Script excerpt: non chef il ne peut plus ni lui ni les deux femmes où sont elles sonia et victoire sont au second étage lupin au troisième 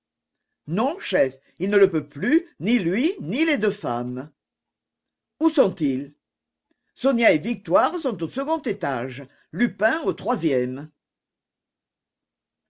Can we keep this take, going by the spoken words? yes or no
no